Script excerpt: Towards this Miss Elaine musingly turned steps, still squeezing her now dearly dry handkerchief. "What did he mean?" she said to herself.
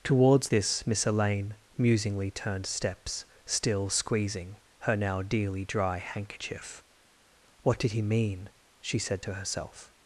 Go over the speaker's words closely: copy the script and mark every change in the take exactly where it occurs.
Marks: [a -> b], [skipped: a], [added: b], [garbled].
Towards this Miss Elaine musingly turned steps, still squeezing her now dearly dry handkerchief. "What did he mean?" she said to herself.